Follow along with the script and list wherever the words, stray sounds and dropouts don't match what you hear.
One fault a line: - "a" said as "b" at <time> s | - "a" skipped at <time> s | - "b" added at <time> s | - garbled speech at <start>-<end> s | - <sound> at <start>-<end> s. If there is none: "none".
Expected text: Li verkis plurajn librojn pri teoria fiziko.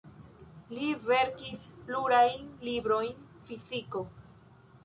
- "pri teoria" skipped at 3.1 s